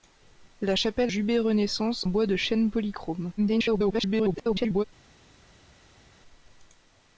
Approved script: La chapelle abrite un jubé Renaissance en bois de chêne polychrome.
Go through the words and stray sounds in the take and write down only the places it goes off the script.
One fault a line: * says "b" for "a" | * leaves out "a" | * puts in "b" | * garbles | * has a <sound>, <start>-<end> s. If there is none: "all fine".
* leaves out "abrite un"
* leaves out "en"
* garbles